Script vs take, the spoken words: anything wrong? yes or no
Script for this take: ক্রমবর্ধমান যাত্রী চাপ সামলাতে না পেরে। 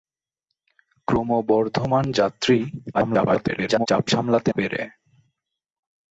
yes